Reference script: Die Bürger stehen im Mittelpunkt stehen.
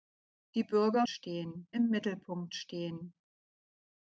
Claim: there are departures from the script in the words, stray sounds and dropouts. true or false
false